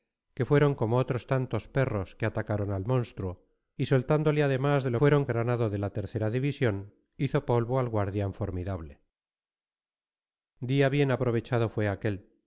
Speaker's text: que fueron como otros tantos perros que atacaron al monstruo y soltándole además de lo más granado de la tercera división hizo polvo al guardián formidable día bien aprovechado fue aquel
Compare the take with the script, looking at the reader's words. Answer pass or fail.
fail